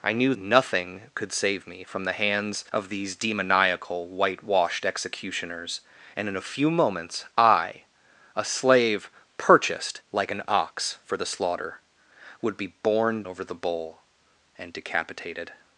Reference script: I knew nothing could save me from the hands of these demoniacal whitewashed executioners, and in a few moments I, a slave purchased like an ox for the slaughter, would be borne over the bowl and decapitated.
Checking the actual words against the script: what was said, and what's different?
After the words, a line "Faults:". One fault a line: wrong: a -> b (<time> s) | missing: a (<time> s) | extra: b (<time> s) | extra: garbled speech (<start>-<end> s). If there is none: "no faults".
I knew nothing could save me from the hands of these demoniacal whitewashed executioners, and in a few moments I, a slave purchased like an ox for the slaughter, would be borne over the bowl and decapitated.
Faults:
no faults